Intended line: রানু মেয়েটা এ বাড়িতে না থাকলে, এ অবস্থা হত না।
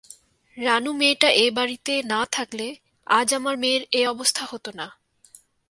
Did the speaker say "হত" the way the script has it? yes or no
yes